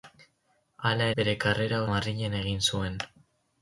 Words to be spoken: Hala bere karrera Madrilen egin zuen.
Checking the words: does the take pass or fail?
pass